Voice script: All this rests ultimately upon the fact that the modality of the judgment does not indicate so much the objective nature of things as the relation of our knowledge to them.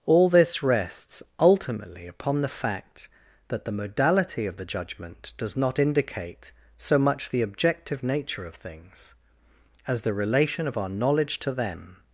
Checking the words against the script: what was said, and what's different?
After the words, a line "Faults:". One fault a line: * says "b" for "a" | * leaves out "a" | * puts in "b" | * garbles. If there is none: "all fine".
All this rests ultimately upon the fact that the modality of the judgment does not indicate so much the objective nature of things as the relation of our knowledge to them.
Faults:
all fine